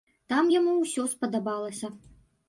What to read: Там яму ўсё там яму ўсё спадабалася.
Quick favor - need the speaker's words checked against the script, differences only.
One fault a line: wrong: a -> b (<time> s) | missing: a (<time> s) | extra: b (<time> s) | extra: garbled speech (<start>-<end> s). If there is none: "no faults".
missing: там яму ўсё (1.0 s)